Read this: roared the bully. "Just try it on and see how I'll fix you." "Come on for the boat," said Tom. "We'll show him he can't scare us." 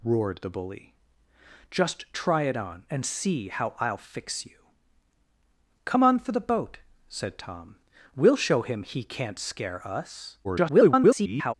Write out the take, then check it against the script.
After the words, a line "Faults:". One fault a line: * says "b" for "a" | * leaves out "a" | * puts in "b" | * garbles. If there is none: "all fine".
roared the bully. "Just try it on and see how I'll fix you." "Come on for the boat," said Tom. "We'll show him he can't scare us." [garbled]
Faults:
* garbles